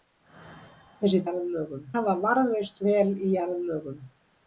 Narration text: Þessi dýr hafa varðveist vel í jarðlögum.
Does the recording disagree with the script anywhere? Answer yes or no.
yes